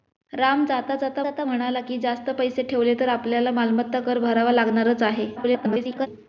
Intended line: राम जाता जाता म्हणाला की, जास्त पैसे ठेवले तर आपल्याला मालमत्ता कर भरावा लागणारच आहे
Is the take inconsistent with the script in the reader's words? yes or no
yes